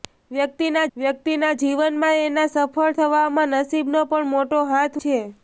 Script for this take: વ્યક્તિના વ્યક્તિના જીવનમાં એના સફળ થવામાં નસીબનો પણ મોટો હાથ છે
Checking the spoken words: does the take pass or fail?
pass